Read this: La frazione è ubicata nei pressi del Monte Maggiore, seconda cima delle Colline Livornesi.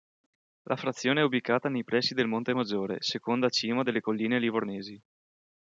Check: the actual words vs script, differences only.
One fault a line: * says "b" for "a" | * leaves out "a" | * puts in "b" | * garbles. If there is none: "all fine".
all fine